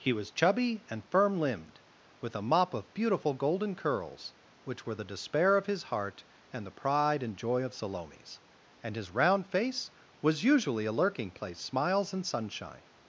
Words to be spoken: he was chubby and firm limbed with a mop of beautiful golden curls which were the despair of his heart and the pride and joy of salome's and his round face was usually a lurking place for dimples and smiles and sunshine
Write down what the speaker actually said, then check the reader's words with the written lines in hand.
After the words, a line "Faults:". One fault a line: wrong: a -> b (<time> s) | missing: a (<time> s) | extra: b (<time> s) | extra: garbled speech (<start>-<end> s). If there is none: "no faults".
he was chubby and firm limbed with a mop of beautiful golden curls which were the despair of his heart and the pride and joy of salome's and his round face was usually a lurking place smiles and sunshine
Faults:
missing: for dimples and (11.6 s)